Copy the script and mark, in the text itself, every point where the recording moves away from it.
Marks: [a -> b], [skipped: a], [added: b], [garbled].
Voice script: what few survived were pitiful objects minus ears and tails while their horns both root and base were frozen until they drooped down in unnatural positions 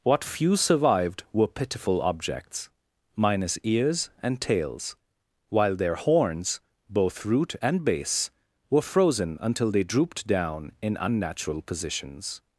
what few survived were pitiful objects minus ears and tails while their horns both root and base were frozen until they drooped down in unnatural positions